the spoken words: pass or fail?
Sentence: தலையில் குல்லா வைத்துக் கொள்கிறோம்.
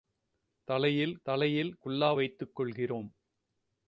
fail